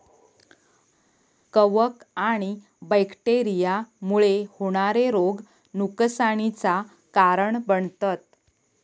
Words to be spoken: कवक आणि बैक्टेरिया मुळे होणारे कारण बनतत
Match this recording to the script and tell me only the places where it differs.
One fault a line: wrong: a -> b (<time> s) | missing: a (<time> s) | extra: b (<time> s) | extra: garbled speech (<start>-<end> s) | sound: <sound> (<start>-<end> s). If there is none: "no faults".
extra: रोग नुकसानीचा (5.1 s)